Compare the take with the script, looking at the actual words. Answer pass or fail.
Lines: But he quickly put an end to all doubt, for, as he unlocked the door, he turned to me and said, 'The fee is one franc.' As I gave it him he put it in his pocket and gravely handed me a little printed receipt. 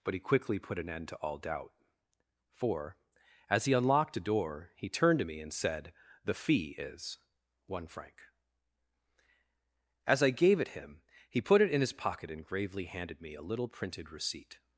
fail